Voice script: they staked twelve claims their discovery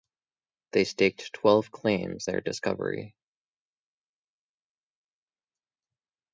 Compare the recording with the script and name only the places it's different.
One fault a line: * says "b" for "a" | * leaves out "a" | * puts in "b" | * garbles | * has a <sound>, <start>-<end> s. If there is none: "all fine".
all fine